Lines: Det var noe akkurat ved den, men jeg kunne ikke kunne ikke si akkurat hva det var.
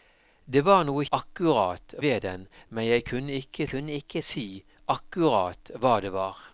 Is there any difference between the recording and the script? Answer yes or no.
no